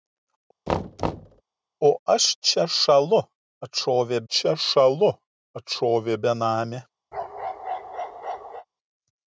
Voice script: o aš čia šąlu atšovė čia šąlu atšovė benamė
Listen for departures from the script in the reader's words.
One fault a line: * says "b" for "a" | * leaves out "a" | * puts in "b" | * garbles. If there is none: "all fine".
all fine